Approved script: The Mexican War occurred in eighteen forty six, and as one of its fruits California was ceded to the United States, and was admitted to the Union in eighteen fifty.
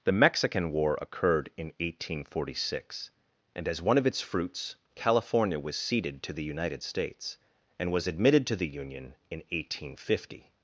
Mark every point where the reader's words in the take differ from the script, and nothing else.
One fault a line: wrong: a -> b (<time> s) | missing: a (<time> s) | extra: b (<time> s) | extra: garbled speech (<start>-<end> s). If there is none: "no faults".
no faults